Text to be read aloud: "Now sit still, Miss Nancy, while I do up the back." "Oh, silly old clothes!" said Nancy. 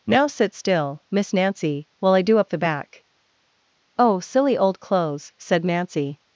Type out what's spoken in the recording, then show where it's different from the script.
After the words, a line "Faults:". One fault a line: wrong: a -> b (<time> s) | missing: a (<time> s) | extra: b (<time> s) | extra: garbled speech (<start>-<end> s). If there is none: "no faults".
"Now sit still, Miss Nancy, while I do up the back." "Oh, silly old clothes!" said Nancy.
Faults:
no faults